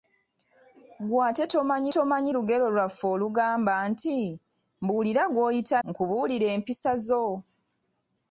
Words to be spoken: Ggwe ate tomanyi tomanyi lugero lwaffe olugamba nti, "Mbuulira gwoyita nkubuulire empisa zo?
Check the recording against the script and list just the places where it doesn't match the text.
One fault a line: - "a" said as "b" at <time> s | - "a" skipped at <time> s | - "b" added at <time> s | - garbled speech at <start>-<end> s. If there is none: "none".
none